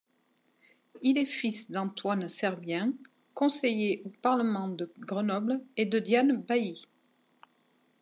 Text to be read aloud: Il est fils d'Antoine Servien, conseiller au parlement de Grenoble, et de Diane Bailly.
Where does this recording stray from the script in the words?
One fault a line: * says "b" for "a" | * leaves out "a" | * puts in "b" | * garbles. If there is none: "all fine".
all fine